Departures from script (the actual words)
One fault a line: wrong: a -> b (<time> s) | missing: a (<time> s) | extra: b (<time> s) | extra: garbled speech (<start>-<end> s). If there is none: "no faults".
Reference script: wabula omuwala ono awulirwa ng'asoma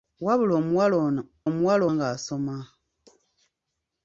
wrong: awulirwa -> omuwala (1.5 s)